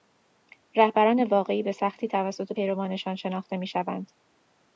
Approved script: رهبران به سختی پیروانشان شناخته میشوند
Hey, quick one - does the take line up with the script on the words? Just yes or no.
no